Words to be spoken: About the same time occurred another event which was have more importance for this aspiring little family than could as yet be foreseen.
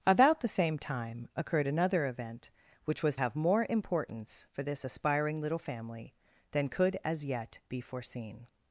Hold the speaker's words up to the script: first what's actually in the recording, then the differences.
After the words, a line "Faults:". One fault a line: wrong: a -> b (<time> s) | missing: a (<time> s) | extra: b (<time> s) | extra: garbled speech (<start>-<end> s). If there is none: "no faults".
About the same time occurred another event which was have more importance for this aspiring little family than could as yet be foreseen.
Faults:
no faults